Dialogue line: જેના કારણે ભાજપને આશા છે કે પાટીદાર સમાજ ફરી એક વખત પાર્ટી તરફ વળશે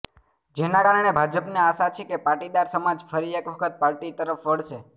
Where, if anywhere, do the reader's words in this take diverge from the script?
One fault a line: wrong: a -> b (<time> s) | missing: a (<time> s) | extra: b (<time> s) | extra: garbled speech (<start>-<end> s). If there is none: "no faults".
no faults